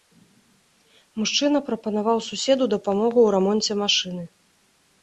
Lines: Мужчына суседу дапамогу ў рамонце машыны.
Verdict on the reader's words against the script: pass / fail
fail